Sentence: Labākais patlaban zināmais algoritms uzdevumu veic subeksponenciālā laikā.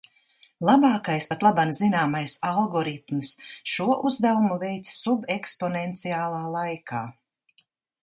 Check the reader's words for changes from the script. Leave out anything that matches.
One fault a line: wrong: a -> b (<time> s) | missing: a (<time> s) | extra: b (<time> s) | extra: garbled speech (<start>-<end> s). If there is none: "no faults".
extra: šo (3.7 s)